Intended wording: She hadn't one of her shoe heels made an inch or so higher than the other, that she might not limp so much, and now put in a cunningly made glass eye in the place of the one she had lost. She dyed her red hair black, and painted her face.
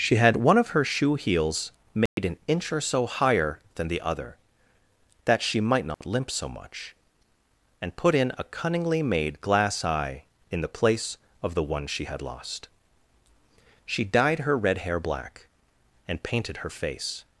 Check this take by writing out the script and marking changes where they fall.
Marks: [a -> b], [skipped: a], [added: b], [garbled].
She [hadn't -> had] one of her shoe heels made an inch or so higher than the other, that she might not limp so much, and [skipped: now] put in a cunningly made glass eye in the place of the one she had lost. She dyed her red hair black, and painted her face.